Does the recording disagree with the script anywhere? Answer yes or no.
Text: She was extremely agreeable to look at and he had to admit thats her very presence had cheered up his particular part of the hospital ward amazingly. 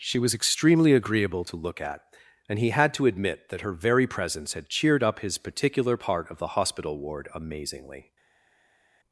yes